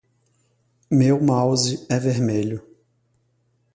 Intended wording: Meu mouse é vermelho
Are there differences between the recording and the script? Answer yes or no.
no